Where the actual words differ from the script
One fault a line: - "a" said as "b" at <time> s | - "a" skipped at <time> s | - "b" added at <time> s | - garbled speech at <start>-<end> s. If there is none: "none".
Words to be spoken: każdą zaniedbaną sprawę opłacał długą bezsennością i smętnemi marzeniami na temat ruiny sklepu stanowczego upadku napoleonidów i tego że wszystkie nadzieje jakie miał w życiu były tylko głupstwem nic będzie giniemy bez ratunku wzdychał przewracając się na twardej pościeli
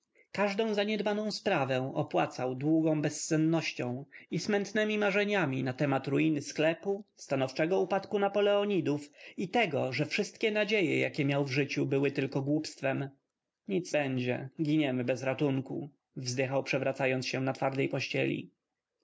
none